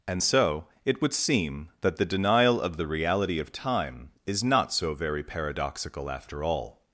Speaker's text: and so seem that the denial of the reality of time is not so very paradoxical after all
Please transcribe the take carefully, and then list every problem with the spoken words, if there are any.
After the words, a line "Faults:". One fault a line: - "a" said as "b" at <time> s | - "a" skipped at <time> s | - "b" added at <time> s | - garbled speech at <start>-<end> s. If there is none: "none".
and so it would seem that the denial of the reality of time is not so very paradoxical after all
Faults:
- "it would" added at 0.9 s